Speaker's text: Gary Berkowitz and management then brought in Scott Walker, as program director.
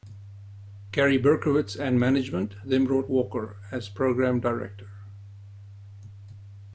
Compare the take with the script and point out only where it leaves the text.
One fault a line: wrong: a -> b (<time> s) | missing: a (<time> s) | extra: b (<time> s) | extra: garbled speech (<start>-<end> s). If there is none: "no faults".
missing: in Scott (3.1 s)